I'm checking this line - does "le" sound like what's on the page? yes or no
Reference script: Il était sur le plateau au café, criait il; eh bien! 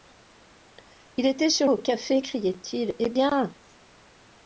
no